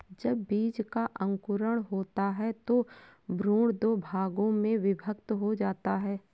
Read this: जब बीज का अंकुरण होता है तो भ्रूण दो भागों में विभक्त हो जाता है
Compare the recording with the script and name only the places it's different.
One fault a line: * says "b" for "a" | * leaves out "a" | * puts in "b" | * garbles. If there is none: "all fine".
all fine